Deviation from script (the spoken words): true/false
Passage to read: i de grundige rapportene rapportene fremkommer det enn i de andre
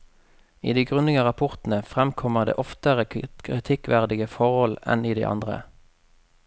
true